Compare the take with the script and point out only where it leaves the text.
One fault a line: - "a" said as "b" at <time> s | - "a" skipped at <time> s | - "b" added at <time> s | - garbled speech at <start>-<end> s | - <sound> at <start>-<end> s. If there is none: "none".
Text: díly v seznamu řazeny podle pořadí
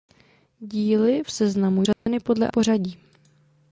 - dropout at 1.9-2.1 s